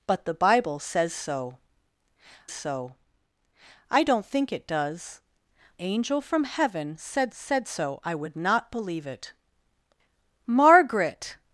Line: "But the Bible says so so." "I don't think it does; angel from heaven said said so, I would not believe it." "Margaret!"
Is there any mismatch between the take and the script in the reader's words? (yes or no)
no